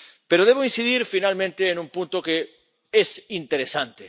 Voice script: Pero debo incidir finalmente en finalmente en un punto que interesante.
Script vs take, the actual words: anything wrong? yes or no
yes